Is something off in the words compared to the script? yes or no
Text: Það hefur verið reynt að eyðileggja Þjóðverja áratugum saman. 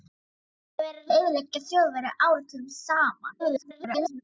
yes